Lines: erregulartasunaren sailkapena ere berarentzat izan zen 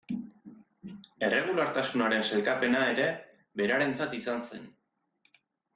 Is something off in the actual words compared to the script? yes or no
no